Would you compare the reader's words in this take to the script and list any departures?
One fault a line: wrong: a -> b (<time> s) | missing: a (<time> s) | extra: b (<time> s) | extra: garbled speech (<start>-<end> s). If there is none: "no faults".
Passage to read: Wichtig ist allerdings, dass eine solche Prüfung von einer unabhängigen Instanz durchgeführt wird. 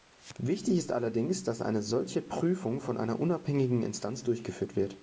no faults